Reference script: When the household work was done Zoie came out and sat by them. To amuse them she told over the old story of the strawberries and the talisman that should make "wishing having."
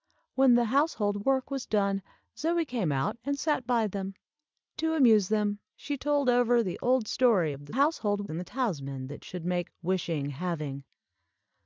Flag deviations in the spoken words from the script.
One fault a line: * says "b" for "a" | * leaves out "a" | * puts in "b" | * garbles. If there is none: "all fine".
* says "household" for "strawberries"